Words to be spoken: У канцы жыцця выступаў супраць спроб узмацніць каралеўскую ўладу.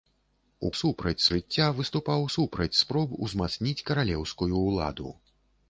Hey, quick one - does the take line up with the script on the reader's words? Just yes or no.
no